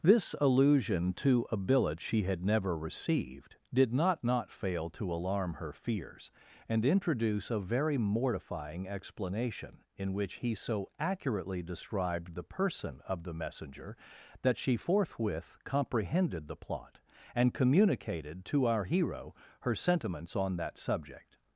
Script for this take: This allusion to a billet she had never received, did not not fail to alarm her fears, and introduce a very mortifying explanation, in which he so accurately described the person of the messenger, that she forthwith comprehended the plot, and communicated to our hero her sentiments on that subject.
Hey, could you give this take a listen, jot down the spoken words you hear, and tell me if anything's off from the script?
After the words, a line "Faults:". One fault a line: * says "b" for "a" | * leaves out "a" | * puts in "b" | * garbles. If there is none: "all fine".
This allusion to a billet she had never received, did not not fail to alarm her fears, and introduce a very mortifying explanation, in which he so accurately described the person of the messenger, that she forthwith comprehended the plot, and communicated to our hero her sentiments on that subject.
Faults:
all fine